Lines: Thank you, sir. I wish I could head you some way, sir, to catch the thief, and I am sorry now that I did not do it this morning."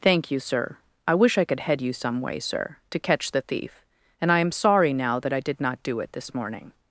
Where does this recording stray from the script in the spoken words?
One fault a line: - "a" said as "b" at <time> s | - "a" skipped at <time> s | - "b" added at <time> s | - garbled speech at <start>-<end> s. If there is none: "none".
none